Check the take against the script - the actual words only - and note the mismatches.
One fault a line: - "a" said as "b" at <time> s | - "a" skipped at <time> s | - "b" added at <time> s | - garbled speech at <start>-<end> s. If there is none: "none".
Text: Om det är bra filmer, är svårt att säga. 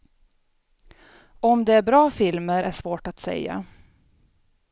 none